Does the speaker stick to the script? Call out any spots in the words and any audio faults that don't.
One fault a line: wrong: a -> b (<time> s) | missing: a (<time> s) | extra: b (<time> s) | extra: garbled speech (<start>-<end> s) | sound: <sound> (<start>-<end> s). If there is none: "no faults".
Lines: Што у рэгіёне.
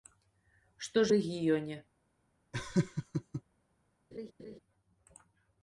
sound: laugh (2.5-3.4 s)
sound: laugh (4.1-4.6 s)